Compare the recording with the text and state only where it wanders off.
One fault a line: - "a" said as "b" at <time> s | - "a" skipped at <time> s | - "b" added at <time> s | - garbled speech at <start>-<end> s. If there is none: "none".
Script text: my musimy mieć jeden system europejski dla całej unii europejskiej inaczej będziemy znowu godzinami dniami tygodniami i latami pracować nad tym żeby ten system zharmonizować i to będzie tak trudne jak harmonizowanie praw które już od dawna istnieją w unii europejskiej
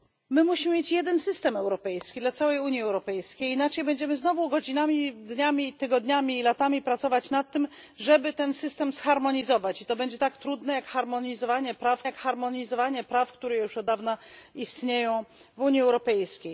- "jak harmonizowanie praw" added at 12.0 s